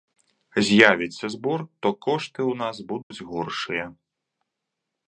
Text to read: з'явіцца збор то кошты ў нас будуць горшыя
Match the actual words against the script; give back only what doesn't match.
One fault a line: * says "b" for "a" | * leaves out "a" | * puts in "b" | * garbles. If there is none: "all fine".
all fine